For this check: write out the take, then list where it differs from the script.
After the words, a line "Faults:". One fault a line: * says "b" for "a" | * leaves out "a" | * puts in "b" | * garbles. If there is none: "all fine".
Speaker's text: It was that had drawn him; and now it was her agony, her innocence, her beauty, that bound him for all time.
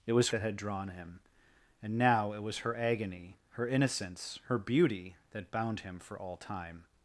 It was that had drawn him; and now it was her agony, her innocence, her beauty, that bound him for all time.
Faults:
all fine